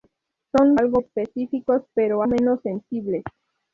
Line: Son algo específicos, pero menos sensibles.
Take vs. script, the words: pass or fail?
pass